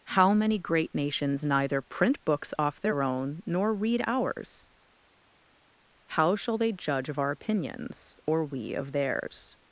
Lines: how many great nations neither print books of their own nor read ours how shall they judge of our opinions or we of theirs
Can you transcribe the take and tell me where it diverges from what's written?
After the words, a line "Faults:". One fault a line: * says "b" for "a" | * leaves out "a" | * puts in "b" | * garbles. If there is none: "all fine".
how many great nations neither print books off their own nor read ours how shall they judge of our opinions or we of theirs
Faults:
* says "off" for "of"